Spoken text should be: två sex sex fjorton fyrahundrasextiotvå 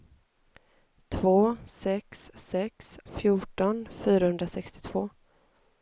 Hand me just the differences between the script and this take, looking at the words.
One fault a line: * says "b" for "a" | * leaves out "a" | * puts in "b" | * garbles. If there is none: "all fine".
all fine